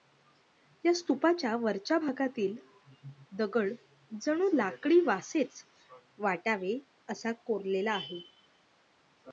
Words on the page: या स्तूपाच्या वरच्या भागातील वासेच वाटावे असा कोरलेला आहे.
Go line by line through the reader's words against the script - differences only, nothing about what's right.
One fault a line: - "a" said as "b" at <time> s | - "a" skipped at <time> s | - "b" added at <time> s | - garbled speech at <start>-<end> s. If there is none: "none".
- "दगड जणू लाकडी" added at 3.3 s